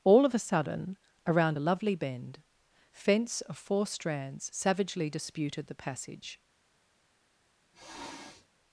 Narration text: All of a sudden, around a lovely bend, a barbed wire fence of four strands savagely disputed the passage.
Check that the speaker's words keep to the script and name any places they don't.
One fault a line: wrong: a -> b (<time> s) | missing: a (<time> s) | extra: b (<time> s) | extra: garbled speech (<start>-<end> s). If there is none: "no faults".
missing: a barbed wire (2.4 s)